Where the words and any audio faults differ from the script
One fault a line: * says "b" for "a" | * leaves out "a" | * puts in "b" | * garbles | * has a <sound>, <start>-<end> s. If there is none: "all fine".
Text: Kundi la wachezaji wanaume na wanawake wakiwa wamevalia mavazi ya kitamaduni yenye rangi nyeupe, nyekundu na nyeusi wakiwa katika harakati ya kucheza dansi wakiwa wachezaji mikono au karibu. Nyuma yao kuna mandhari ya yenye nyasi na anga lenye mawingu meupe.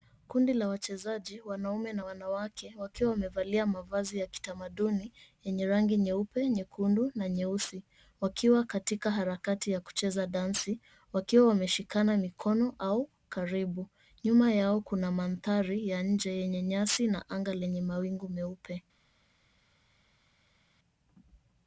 * says "wameshikana" for "wachezaji"
* puts in "nje"